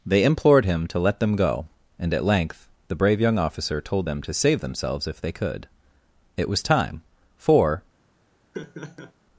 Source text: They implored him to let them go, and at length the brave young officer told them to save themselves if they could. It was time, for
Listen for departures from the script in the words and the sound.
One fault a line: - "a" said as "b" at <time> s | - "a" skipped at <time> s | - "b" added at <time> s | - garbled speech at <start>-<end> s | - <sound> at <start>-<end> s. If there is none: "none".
- laugh at 8.5-9.1 s